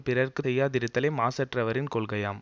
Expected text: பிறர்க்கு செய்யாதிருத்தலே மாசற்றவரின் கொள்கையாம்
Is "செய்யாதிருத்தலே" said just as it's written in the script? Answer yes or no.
yes